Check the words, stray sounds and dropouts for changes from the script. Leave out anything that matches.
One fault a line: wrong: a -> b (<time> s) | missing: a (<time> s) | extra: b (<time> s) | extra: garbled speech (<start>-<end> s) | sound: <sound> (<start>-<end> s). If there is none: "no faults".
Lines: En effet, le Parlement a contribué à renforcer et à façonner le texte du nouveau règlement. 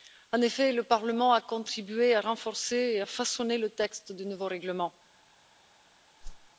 sound: whoosh (6.2-6.5 s)